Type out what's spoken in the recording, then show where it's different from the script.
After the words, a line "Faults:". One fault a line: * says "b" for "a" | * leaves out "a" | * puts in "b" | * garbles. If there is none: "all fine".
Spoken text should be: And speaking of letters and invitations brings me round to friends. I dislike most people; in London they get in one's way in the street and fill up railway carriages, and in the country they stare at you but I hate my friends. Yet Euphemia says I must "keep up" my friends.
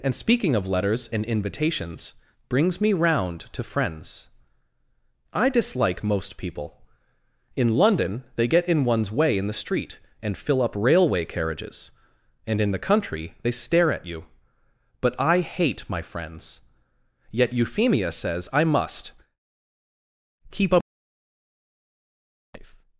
And speaking of letters and invitations brings me round to friends. I dislike most people; in London they get in one's way in the street and fill up railway carriages, and in the country they stare at you but I hate my friends. Yet Euphemia says I must "keep up.
Faults:
* leaves out "my friends"